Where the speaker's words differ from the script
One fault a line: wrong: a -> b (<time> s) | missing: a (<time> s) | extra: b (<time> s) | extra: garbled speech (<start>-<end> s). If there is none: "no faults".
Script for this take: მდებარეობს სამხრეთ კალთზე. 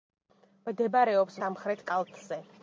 no faults